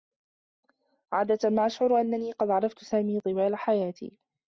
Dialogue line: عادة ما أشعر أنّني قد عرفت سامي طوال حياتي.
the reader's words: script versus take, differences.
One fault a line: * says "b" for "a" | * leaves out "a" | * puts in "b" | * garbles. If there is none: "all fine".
all fine